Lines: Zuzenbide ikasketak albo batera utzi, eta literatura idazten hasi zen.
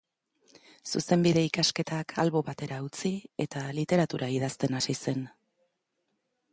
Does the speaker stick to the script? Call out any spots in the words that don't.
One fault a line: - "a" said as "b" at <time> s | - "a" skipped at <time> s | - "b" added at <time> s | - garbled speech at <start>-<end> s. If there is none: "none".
none